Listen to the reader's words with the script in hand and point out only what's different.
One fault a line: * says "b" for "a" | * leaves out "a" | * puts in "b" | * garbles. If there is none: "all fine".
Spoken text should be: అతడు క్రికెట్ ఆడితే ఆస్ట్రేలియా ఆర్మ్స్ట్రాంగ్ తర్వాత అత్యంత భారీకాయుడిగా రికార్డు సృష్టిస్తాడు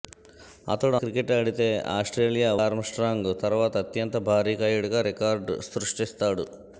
all fine